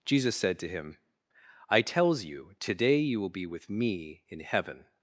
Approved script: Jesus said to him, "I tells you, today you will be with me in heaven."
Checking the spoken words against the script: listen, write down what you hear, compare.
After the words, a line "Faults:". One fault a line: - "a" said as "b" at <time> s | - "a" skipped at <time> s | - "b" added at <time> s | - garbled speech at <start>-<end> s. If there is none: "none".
Jesus said to him, "I tells you, today you will be with me in heaven."
Faults:
none